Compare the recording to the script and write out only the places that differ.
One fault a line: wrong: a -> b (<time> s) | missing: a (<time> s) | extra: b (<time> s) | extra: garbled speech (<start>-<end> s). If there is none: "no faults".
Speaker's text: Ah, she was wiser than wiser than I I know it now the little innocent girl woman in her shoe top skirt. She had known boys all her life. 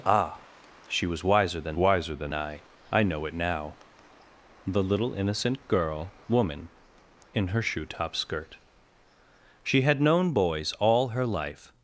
no faults